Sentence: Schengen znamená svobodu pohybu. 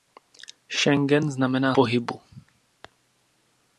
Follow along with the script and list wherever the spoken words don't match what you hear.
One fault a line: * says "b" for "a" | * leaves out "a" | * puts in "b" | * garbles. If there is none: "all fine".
* leaves out "svobodu"